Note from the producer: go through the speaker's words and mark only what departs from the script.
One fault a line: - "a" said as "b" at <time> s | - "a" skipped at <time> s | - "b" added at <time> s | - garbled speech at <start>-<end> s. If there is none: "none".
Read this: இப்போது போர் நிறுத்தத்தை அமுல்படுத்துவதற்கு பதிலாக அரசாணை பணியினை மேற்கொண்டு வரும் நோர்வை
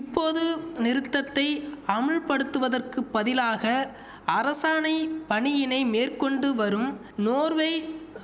- "போர்" skipped at 0.4 s